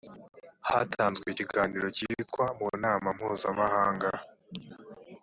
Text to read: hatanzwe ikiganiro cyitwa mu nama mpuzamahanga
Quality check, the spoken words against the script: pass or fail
pass